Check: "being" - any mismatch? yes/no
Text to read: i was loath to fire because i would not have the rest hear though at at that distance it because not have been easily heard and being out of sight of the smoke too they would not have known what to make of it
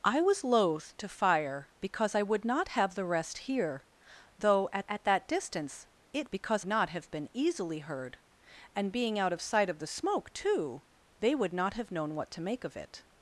no